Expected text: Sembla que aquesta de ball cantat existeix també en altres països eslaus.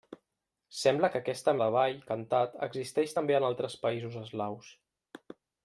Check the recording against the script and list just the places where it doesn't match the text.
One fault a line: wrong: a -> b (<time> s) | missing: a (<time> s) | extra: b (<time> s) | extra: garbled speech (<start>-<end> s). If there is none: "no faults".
no faults